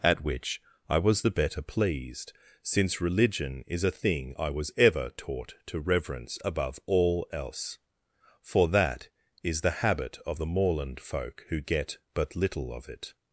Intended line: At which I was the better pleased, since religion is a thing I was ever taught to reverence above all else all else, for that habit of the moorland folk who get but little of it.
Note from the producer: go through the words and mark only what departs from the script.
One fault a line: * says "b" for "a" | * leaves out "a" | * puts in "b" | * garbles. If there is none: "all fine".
* says "for that is the" for "all else for that"